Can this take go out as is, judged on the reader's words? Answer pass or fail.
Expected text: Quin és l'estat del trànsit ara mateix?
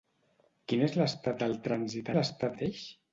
fail